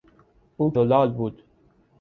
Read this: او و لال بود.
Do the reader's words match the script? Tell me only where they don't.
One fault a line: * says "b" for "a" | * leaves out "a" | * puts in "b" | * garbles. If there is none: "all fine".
all fine